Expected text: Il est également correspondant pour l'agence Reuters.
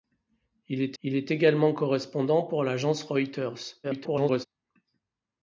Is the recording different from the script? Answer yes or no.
yes